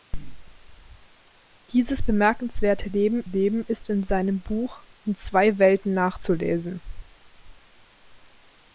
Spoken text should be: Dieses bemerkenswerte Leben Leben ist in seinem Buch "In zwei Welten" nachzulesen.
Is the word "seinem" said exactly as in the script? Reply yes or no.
yes